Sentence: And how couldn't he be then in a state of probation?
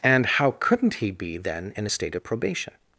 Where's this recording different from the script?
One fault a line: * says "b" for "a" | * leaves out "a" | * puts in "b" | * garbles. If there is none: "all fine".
all fine